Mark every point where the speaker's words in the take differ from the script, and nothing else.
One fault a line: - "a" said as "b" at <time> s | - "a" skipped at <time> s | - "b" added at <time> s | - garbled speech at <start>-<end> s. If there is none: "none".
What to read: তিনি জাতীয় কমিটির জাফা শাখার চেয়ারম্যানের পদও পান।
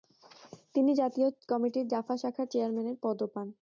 none